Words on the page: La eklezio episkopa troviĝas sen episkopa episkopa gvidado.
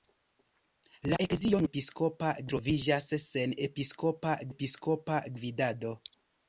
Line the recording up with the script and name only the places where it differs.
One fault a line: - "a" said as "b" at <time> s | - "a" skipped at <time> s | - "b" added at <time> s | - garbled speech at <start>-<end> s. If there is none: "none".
none